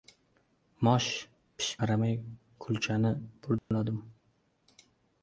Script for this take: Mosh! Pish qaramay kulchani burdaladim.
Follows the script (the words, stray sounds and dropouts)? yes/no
no